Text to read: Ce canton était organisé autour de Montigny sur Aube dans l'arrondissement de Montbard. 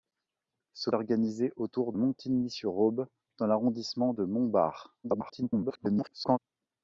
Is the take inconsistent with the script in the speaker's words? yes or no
yes